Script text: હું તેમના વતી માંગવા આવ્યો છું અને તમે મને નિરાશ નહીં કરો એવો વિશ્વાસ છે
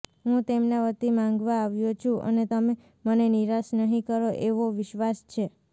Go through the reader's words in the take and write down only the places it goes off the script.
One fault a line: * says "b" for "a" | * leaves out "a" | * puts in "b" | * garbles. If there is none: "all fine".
all fine